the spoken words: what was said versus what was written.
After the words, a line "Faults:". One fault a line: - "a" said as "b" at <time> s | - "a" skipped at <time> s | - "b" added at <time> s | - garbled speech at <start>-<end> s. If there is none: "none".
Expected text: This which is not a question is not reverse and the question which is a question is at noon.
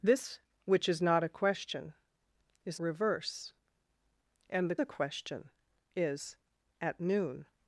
This which is not a question is reverse and the a question is at noon.
Faults:
- "not" skipped at 2.8 s
- "question which is" skipped at 4.8 s